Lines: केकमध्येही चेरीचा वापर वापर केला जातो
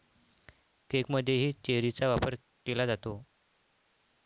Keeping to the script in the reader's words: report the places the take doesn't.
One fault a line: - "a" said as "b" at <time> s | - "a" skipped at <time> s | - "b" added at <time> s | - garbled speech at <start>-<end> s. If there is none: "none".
- "वापर" skipped at 2.4 s